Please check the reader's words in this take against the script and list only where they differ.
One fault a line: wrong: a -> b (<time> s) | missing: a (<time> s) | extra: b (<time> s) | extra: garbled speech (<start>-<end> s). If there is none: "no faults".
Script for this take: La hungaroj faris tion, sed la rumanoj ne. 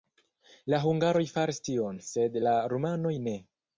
no faults